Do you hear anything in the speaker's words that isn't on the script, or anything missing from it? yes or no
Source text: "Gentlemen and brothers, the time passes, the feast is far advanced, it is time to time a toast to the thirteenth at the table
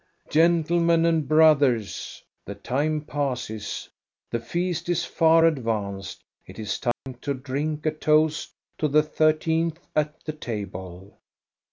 yes